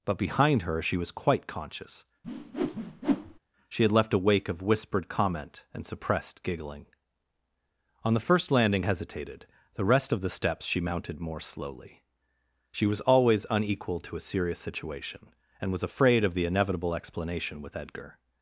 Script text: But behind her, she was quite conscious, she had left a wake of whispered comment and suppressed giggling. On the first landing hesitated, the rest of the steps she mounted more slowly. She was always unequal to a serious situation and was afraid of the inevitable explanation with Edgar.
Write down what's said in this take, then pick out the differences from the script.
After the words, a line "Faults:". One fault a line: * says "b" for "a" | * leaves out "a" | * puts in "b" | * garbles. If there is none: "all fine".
But behind her, she was quite conscious, she had left a wake of whispered comment and suppressed giggling. On the first landing hesitated, the rest of the steps she mounted more slowly. She was always unequal to a serious situation and was afraid of the inevitable explanation with Edgar.
Faults:
all fine